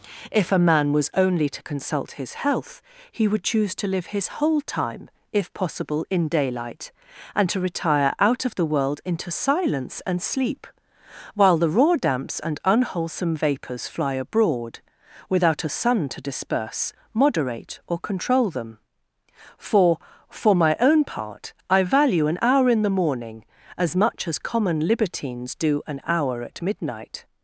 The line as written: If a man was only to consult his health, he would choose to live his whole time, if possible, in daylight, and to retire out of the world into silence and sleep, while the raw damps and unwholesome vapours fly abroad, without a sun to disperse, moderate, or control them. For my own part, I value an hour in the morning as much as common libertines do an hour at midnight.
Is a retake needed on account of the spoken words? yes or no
yes